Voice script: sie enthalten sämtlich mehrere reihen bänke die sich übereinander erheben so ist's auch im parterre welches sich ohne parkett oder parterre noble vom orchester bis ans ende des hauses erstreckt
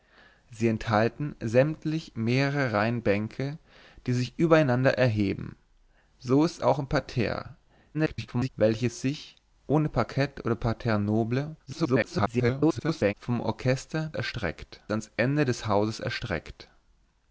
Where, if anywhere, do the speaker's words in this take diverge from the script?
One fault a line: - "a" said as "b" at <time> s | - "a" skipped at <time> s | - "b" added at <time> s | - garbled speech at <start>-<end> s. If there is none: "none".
- garbled speech at 7.9-8.5 s
- garbled speech at 11.7-13.1 s
- "bis" said as "erstreckt" at 14.1 s